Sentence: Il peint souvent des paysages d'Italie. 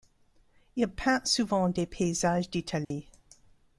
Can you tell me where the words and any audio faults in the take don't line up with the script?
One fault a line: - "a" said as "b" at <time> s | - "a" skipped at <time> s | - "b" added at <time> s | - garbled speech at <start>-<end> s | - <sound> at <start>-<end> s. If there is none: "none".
- dropout at 2.8-2.9 s